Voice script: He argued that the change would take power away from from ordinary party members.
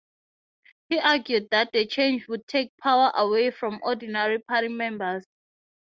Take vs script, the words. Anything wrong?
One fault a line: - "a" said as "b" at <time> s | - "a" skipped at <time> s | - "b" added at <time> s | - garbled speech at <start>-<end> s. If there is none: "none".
- "from" skipped at 3.8 s